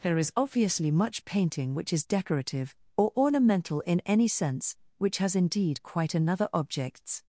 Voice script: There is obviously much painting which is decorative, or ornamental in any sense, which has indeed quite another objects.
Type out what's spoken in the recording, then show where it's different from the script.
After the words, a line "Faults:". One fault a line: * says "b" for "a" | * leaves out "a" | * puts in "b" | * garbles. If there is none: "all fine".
There is obviously much painting which is decorative, or ornamental in any sense, which has indeed quite another objects.
Faults:
all fine